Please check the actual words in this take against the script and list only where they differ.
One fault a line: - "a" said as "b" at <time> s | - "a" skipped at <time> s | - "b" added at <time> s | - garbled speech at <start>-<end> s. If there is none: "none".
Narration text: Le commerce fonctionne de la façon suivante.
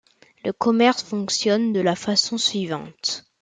none